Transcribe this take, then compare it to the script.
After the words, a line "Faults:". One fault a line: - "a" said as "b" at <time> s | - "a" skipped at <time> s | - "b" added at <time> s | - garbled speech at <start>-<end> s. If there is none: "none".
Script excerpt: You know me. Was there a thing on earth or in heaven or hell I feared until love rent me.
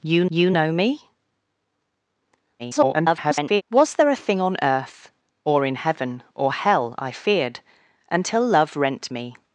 You you know me. [garbled] Was there a thing on earth or in heaven or hell I feared until love rent me.
Faults:
- "you" added at 0.3 s
- garbled speech at 2.6-3.6 s